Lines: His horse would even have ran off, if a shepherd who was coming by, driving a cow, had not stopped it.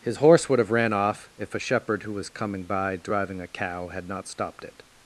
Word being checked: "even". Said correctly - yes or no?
no